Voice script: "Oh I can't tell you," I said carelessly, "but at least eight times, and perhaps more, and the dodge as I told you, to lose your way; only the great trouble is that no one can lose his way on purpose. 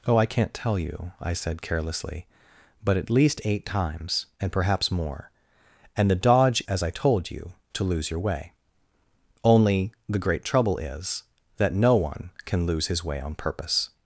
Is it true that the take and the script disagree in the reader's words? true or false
false